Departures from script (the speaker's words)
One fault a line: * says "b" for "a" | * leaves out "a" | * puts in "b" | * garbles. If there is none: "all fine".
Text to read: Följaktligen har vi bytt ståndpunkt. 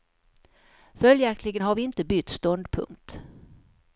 * puts in "inte"